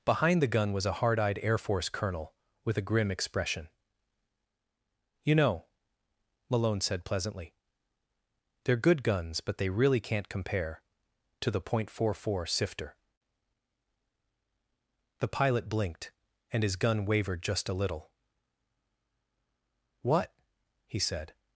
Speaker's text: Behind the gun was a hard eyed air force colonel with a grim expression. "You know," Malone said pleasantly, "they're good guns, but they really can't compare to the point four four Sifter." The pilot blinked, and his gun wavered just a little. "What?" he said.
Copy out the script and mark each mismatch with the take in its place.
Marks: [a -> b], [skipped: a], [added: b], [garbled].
Behind the gun was a hard eyed air force colonel with a grim expression. "You know," Malone said pleasantly, "they're good guns, but they really can't compare to the point four four Sifter." The pilot blinked, and his gun wavered just a little. "What?" he said.